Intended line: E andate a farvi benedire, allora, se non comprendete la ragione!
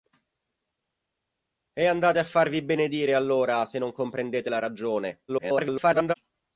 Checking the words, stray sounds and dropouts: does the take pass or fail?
fail